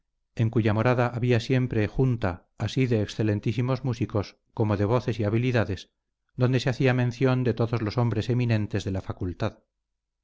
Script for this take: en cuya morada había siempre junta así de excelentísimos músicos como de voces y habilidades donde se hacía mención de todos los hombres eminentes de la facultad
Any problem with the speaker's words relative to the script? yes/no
no